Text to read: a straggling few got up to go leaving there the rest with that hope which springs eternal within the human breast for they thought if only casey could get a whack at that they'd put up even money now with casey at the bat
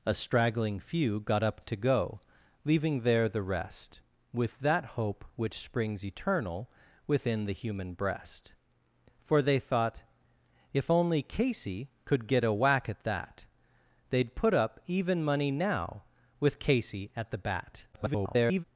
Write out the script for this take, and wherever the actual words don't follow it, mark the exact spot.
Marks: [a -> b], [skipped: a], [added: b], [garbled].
a straggling few got up to go leaving there the rest with that hope which springs eternal within the human breast for they thought if only casey could get a whack at that they'd put up even money now with casey at the bat [garbled]